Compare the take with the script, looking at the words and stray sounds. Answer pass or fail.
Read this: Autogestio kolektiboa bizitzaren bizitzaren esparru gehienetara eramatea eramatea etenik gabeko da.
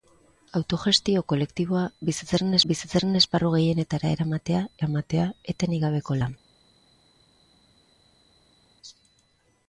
pass